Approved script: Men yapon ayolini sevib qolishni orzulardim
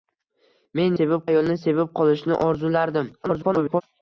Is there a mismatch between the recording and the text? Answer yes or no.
yes